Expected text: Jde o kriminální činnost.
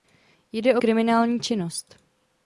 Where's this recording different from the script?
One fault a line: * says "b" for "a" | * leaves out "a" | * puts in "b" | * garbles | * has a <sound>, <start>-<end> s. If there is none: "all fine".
all fine